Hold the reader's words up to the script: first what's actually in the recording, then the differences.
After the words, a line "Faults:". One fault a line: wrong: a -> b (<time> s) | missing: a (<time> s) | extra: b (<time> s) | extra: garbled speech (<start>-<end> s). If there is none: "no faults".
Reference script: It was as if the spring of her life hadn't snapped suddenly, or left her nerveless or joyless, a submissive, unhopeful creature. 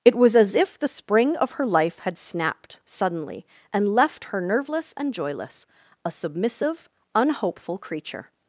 It was as if the spring of her life had snapped suddenly, and left her nerveless and joyless, a submissive, unhopeful creature.
Faults:
wrong: hadn't -> had (2.0 s)
wrong: or -> and (3.7 s)
wrong: or -> and (5.0 s)